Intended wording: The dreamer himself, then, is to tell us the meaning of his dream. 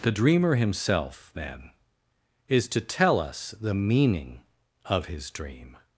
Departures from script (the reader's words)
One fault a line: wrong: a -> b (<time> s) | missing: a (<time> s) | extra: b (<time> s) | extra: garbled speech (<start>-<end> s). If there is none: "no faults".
no faults